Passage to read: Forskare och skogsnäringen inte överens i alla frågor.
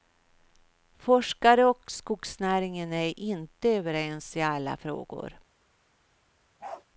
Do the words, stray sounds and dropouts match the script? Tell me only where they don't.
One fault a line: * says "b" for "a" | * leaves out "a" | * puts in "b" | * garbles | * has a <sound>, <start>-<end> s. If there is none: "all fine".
* puts in "är"
* has a bark, 6.6-6.8 s